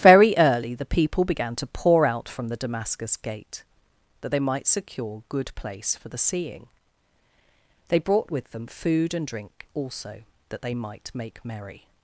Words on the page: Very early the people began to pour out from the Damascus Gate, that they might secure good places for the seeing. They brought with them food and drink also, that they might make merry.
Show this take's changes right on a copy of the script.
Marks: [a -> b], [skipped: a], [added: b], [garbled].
Very early the people began to pour out from the Damascus Gate, that they might secure good [places -> place] for the seeing. They brought with them food and drink also, that they might make merry.